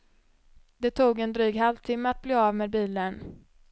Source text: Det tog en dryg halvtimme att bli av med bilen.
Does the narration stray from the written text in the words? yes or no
no